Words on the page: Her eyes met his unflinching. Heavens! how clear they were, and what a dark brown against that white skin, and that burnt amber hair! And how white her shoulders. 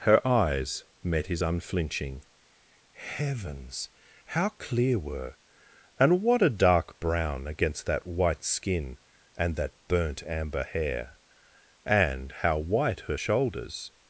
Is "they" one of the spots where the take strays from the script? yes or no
yes